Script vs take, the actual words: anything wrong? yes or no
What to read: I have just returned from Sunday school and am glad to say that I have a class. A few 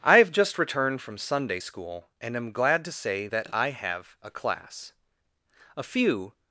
no